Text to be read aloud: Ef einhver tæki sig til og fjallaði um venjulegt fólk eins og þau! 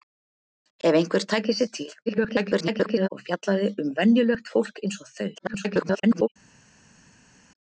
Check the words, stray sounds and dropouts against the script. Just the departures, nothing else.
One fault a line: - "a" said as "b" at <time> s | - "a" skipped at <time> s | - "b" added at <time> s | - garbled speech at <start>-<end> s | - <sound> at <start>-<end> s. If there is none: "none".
- garbled speech at 2.1-3.1 s
- garbled speech at 5.4-6.3 s